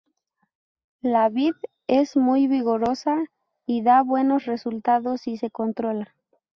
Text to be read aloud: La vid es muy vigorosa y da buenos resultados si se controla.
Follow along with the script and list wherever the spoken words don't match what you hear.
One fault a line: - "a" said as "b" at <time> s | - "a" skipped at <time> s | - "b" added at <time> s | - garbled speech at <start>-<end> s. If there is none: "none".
none